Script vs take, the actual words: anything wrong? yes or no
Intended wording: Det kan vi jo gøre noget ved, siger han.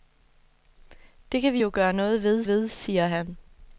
yes